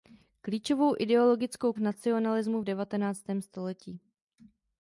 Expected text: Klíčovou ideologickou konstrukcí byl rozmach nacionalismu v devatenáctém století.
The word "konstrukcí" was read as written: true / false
false